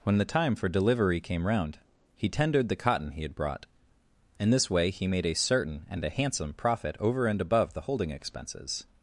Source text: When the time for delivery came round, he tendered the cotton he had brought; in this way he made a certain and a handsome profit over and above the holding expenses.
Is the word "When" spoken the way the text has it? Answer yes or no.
yes